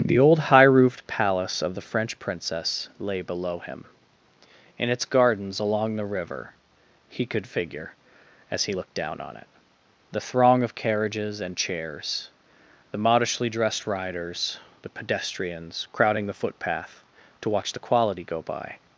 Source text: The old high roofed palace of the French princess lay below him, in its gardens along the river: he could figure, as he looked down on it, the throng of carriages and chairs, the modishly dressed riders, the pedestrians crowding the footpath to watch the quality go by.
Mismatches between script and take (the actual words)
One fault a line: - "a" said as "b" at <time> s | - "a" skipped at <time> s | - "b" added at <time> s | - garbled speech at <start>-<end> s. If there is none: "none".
none